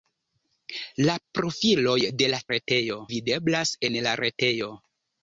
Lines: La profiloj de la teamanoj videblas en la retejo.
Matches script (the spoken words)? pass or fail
fail